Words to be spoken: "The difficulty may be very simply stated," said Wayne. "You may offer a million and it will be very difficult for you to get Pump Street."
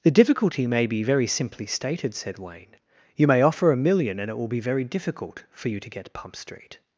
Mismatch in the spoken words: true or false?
false